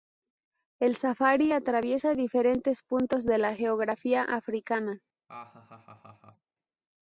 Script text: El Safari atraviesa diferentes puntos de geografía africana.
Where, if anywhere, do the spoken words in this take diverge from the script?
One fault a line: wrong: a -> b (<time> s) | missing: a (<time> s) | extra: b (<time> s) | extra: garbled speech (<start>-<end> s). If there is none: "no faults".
extra: la (3.4 s)